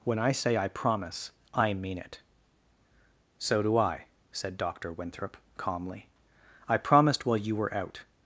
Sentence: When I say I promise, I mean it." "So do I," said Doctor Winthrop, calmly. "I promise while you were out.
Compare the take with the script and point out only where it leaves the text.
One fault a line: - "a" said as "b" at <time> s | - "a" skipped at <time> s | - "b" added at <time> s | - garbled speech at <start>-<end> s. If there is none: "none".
- "promise" said as "promised" at 6.8 s